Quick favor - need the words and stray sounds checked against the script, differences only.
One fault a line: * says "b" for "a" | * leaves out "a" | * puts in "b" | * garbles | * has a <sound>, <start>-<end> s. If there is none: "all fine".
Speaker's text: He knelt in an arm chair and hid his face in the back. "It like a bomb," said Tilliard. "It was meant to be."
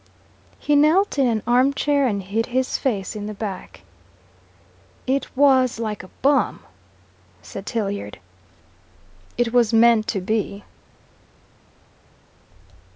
* puts in "was"